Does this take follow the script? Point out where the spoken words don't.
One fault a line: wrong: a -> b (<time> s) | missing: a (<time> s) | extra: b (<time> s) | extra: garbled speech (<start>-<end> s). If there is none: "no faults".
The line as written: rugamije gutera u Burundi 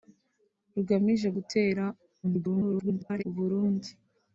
extra: garbled speech (2.2-3.2 s)